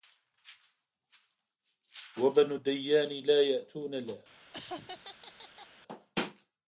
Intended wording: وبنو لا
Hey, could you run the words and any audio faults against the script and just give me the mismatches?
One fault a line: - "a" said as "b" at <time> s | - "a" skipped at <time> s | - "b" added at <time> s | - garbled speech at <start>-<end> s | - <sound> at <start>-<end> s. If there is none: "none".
- "الديان لا يأتون" added at 2.5 s
- laugh at 4.5-5.7 s